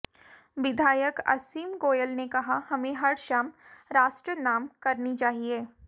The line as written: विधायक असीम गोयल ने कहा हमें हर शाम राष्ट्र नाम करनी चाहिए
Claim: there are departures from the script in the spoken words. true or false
false